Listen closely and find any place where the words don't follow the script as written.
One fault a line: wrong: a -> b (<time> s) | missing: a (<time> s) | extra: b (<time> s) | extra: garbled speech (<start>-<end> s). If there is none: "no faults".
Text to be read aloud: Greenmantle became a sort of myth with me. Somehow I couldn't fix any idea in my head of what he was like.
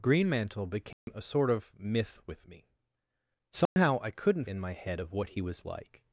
missing: fix any idea (4.5 s)